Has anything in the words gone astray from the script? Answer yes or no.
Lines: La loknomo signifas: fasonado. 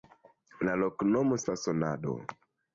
yes